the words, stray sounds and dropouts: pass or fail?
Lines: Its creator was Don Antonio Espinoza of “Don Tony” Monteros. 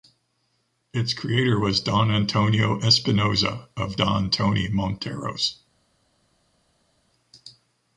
pass